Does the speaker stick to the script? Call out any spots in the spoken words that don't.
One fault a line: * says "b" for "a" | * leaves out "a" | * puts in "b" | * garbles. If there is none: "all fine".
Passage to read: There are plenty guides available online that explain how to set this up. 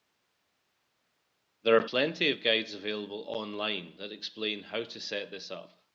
* puts in "of"